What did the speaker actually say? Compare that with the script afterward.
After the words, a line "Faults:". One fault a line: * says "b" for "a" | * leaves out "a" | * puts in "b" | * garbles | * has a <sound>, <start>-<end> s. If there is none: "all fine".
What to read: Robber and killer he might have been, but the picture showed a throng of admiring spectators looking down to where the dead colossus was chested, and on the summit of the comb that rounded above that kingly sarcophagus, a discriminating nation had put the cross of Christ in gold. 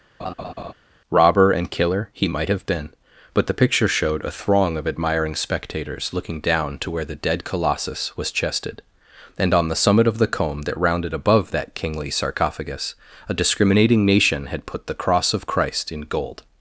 Robber and killer he might have been, but the picture showed a throng of admiring spectators looking down to where the dead colossus was chested, and on the summit of the comb that rounded above that kingly sarcophagus, a discriminating nation had put the cross of Christ in gold.
Faults:
* has a laugh, 0.2-0.7 s